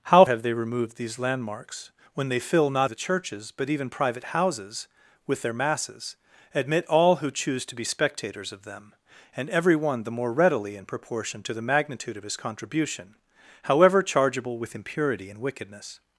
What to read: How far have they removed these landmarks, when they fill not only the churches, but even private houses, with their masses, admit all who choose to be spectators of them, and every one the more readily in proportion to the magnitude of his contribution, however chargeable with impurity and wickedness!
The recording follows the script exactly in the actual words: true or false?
false